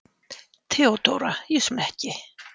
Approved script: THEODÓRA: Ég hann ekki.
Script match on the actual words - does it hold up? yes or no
yes